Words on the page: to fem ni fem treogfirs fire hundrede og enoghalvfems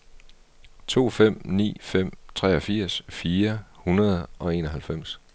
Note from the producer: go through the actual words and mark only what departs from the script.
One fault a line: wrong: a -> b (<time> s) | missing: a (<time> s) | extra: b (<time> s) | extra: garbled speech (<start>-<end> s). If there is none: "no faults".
no faults